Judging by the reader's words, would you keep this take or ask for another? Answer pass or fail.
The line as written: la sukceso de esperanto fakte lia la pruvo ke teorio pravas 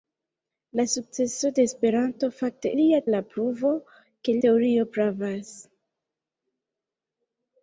pass